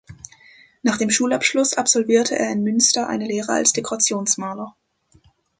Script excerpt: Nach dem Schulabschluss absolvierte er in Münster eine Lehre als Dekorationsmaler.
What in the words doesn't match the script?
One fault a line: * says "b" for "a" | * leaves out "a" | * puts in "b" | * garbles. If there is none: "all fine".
all fine